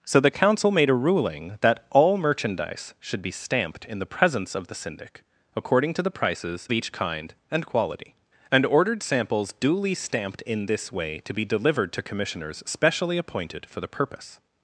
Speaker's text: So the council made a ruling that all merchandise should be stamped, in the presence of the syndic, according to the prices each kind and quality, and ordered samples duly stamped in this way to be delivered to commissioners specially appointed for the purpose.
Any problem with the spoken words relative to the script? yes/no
no